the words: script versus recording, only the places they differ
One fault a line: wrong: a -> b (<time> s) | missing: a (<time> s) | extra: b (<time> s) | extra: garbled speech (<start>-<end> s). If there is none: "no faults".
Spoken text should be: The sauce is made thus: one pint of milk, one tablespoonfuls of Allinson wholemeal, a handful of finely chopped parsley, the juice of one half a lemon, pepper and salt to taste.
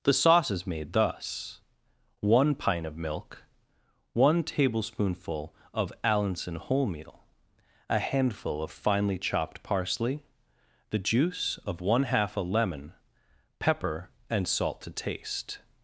wrong: tablespoonfuls -> tablespoonful (4.4 s)